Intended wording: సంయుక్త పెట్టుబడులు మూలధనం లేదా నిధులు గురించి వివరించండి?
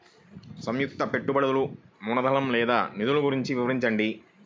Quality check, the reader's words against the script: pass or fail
pass